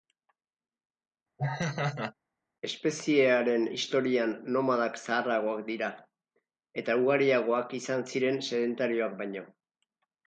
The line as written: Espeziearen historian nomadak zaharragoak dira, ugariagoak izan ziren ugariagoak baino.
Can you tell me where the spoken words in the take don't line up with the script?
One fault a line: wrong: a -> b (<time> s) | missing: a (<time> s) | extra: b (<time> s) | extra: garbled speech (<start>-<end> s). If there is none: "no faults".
extra: eta (6.8 s)
wrong: ugariagoak -> sedentarioak (8.5 s)